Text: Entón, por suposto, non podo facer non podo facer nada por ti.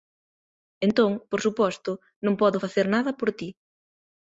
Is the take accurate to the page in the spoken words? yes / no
no